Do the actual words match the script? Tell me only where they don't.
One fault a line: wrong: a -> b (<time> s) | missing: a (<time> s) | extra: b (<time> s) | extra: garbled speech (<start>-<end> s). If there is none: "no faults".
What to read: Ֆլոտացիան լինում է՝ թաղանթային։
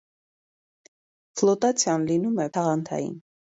no faults